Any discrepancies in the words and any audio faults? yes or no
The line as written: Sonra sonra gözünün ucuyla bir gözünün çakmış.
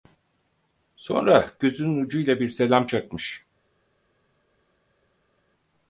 yes